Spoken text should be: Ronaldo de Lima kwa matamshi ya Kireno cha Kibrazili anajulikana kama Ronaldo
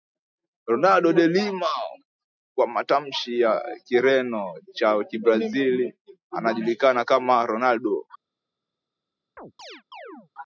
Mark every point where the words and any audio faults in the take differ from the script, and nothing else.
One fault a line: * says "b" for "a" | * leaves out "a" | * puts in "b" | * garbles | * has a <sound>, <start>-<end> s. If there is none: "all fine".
* has a chirp, 9.4-10.3 s